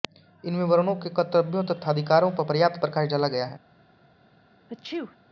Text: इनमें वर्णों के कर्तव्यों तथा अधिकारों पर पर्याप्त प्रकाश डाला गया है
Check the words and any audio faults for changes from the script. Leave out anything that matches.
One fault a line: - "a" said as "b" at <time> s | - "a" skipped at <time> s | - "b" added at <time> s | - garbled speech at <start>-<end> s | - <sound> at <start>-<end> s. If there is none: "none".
- sneeze at 4.7-5.2 s